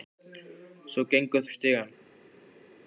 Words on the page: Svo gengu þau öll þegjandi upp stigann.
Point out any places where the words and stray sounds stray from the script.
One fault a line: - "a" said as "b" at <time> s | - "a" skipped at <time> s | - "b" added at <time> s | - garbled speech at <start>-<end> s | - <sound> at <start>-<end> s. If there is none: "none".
- "þau öll þegjandi" skipped at 1.4 s